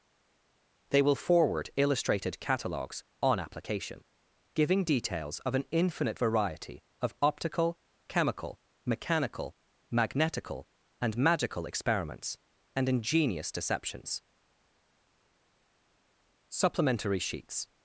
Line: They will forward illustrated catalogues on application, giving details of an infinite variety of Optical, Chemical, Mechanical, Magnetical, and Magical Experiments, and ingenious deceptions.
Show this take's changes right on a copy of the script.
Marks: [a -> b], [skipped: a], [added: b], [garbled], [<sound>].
They will forward illustrated catalogues on application, giving details of an infinite variety of Optical, Chemical, Mechanical, Magnetical, and Magical Experiments, and ingenious deceptions. [added: Supplementary sheets]